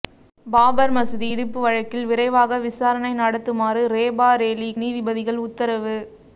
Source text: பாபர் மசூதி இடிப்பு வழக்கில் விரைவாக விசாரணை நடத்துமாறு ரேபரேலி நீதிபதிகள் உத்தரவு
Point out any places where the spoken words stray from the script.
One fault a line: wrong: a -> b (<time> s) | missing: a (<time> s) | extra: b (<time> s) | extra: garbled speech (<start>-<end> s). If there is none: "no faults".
no faults